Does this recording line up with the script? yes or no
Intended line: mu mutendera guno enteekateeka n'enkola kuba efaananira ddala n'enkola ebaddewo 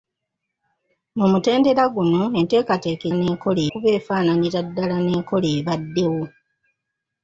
yes